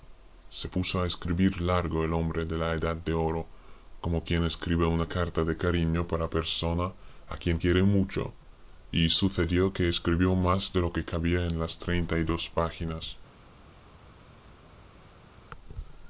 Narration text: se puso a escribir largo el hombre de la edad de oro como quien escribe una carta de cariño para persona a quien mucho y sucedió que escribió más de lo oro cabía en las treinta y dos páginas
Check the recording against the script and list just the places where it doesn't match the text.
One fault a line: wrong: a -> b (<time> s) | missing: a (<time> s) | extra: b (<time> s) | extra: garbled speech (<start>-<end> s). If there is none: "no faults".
extra: quiere (7.6 s)
wrong: oro -> que (10.9 s)